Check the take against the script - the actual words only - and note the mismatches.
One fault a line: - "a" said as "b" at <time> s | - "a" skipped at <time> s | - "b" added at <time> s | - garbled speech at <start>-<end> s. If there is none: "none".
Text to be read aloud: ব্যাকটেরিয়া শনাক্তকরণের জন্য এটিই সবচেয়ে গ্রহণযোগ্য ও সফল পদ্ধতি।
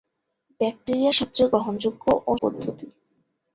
- "শনাক্তকরণের জন্য এটিই" skipped at 1.1 s
- "সফল" skipped at 2.3 s